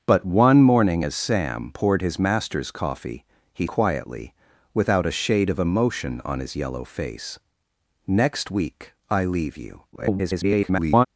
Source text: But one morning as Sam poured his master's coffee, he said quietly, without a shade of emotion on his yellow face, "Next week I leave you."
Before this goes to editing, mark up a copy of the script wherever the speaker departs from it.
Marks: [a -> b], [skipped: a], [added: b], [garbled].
But one morning as Sam poured his master's coffee, he [skipped: said] quietly, without a shade of emotion on his yellow face, "Next week I leave you." [garbled]